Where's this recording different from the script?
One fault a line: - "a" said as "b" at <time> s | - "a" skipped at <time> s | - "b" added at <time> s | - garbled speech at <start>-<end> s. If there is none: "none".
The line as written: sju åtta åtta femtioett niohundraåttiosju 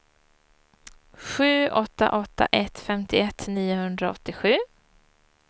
- "ett" added at 2.5 s